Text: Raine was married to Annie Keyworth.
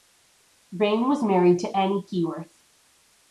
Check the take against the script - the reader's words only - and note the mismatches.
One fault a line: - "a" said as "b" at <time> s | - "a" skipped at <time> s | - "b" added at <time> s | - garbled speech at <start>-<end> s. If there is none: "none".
none